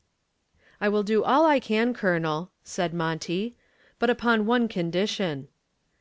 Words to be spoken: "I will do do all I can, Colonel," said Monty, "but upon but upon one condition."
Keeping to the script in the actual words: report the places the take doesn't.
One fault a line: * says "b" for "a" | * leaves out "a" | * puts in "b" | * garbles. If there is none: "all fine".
* leaves out "do"
* leaves out "but upon"